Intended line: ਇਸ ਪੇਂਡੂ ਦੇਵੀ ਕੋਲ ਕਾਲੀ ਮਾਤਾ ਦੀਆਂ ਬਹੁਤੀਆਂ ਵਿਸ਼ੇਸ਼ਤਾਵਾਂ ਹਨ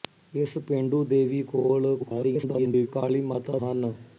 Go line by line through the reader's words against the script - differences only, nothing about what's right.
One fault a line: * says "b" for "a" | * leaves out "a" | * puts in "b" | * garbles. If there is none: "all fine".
* garbles
* leaves out "ਦੀਆਂ ਬਹੁਤੀਆਂ ਵਿਸ਼ੇਸ਼ਤਾਵਾਂ"